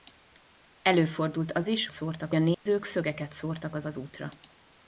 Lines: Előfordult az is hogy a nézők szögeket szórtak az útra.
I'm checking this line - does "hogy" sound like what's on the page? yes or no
no